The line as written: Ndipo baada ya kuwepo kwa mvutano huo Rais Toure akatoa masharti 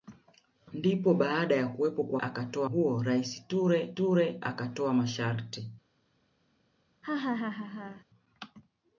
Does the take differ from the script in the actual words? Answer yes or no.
yes